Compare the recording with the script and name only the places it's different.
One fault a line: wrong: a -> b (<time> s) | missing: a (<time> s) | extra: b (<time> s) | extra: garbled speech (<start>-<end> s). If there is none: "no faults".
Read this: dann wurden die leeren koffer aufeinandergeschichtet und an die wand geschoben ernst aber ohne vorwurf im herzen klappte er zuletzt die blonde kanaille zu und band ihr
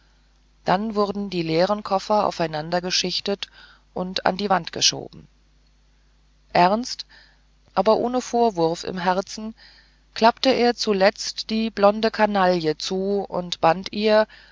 no faults